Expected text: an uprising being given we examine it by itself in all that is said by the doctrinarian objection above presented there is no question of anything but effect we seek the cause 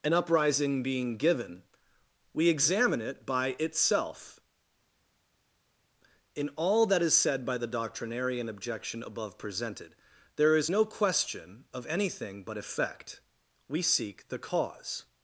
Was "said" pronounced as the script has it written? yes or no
yes